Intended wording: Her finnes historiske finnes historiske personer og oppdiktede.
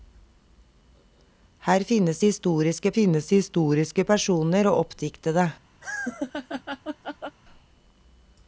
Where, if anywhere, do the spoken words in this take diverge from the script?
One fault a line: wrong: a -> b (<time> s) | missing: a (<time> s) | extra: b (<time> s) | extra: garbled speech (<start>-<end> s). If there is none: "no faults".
no faults